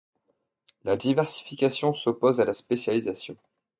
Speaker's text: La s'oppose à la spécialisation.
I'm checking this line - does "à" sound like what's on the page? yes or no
yes